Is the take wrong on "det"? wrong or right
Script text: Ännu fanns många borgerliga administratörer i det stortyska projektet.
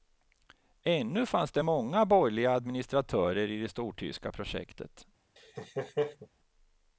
right